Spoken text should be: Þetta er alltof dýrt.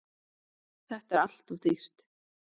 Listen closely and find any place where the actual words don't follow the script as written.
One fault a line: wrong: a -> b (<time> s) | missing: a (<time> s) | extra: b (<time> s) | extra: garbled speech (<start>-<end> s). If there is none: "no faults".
no faults